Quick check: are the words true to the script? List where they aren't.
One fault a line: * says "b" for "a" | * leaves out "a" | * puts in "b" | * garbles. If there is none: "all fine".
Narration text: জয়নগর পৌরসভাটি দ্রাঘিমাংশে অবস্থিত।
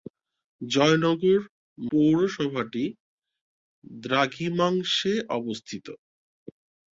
all fine